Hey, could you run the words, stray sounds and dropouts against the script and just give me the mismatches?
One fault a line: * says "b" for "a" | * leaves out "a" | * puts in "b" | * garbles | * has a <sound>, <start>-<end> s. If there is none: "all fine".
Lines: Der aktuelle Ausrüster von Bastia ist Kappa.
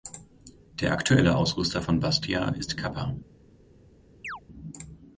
* has a chirp, 4.2-4.4 s